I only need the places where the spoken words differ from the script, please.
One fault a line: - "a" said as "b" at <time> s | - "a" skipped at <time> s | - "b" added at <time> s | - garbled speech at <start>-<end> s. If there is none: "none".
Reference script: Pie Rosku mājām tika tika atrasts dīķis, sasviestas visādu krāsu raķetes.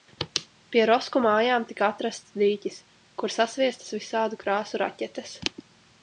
- "tika" skipped at 1.9 s
- "kur" added at 3.2 s